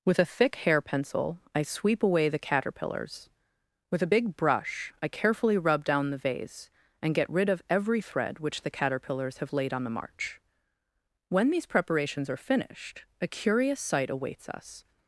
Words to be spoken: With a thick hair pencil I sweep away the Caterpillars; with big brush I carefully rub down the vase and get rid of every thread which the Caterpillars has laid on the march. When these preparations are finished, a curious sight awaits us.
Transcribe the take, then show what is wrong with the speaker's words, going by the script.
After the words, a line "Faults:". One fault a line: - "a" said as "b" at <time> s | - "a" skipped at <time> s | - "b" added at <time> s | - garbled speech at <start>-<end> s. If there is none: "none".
With a thick hair pencil I sweep away the Caterpillars; with a big brush I carefully rub down the vase and get rid of every thread which the Caterpillars have laid on the march. When these preparations are finished, a curious sight awaits us.
Faults:
- "a" added at 4.0 s
- "has" said as "have" at 9.4 s